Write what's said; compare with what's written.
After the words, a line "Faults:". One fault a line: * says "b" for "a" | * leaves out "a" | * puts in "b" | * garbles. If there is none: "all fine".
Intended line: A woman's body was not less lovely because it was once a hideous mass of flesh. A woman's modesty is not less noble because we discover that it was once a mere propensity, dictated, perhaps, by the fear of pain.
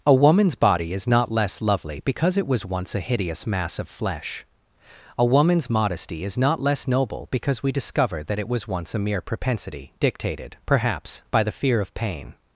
A woman's body is not less lovely because it was once a hideous mass of flesh. A woman's modesty is not less noble because we discover that it was once a mere propensity, dictated, perhaps, by the fear of pain.
Faults:
* says "is" for "was"